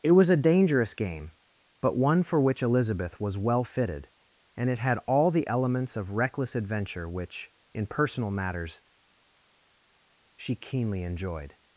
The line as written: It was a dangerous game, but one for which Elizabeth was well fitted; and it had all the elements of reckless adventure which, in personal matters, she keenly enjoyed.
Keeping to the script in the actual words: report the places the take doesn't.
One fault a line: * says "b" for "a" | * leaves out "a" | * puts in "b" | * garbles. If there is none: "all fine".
all fine